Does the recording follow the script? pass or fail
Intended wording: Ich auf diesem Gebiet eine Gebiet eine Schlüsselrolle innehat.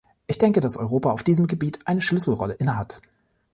fail